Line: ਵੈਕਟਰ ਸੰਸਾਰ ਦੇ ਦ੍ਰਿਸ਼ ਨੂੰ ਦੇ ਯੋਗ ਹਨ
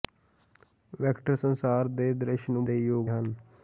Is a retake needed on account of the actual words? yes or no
no